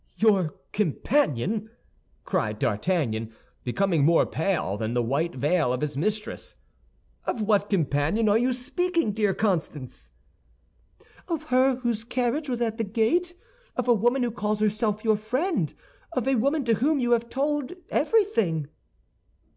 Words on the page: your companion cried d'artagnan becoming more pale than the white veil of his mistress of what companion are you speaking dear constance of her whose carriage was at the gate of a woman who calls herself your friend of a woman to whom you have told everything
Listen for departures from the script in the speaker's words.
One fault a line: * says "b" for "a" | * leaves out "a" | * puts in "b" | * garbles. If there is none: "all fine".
all fine